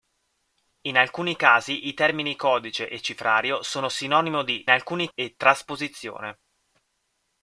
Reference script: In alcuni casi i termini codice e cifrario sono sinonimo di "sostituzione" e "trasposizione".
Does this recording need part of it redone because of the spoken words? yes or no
yes